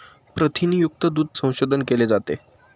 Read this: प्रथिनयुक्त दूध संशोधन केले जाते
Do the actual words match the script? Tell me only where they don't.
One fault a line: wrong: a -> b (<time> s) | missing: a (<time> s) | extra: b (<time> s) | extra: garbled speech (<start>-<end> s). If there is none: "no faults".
no faults